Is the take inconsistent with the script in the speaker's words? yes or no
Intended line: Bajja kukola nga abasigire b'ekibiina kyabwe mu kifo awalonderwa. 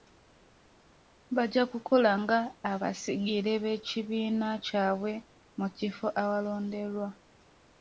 no